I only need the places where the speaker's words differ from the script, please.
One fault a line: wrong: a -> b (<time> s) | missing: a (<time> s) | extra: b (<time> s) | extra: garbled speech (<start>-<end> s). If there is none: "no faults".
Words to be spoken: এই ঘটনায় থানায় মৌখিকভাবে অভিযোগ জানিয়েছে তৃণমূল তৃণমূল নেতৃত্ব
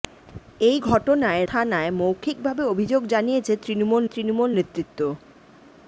no faults